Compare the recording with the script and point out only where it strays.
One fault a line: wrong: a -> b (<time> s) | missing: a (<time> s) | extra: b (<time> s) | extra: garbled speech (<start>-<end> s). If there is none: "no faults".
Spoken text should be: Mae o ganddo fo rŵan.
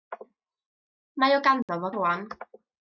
no faults